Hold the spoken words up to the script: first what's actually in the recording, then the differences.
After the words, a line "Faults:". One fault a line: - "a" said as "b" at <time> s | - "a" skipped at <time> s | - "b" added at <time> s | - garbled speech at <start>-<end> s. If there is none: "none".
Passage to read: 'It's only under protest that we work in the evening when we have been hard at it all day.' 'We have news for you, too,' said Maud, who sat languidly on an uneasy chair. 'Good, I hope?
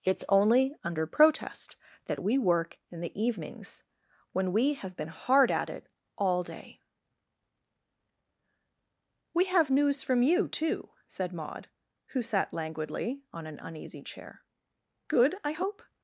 'It's only under protest that we work in the evenings when we have been hard at it all day.' 'We have news from you, too,' said Maud, who sat languidly on an uneasy chair. 'Good, I hope?
Faults:
- "evening" said as "evenings" at 3.2 s
- "for" said as "from" at 10.0 s